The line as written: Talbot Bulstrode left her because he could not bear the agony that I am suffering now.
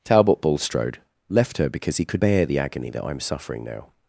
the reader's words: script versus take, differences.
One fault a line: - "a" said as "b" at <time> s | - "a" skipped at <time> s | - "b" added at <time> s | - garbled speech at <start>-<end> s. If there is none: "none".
- "not" skipped at 2.2 s